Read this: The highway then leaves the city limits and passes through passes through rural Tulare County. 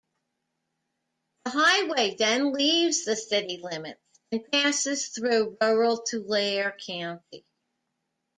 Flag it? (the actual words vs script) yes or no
yes